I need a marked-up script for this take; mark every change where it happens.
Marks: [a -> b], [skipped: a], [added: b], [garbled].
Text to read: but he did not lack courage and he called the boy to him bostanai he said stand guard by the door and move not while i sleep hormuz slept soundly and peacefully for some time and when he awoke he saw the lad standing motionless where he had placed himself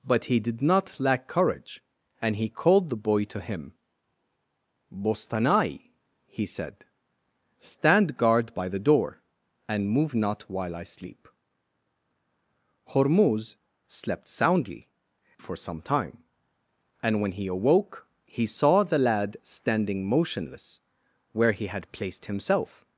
but he did not lack courage and he called the boy to him bostanai he said stand guard by the door and move not while i sleep hormuz slept soundly [skipped: and peacefully] for some time and when he awoke he saw the lad standing motionless where he had placed himself